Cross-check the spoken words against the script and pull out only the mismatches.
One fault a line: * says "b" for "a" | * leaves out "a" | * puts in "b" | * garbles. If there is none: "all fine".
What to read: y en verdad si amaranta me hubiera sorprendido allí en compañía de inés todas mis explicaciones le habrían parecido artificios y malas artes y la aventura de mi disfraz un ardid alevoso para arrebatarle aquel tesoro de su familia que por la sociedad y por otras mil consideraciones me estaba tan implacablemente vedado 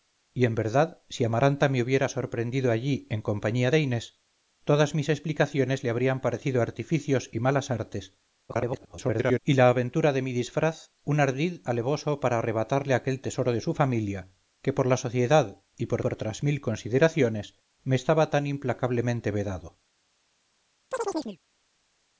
* garbles
* puts in "por"